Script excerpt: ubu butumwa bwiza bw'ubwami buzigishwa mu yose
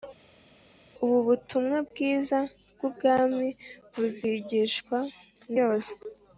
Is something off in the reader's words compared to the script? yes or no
no